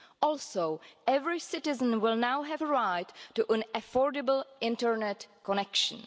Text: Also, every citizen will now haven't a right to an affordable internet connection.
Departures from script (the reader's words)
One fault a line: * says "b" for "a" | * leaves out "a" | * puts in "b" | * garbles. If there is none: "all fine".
* says "have" for "haven't"